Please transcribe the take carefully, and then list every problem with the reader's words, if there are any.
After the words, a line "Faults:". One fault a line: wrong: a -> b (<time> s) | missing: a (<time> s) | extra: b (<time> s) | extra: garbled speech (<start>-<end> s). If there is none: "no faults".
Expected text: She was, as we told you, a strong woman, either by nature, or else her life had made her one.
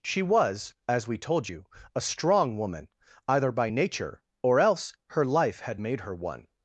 She was, as we told you, a strong woman, either by nature, or else her life had made her one.
Faults:
no faults